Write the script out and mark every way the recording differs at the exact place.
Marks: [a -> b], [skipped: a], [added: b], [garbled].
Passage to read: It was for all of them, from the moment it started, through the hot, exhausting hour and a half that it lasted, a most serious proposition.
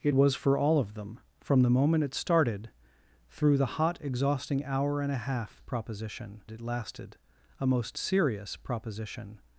It was for all of them, from the moment it started, through the hot, exhausting hour and a half [that -> proposition] it lasted, a most serious proposition.